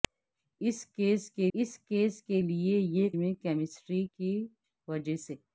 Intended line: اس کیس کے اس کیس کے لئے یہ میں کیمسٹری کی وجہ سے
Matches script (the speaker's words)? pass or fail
pass